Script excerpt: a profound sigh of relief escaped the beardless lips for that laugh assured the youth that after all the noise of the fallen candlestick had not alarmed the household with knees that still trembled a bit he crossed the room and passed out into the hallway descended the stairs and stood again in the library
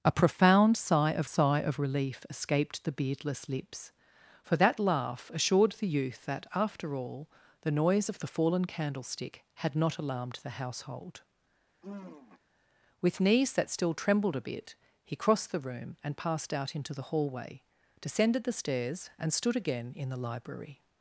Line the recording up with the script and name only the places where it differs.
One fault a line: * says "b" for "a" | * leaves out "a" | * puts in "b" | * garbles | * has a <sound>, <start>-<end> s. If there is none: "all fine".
* puts in "sigh of"
* has a sigh, 11.8-12.4 s